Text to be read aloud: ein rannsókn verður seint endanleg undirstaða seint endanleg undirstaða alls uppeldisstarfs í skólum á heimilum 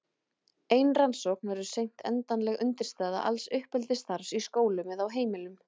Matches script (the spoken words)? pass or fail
fail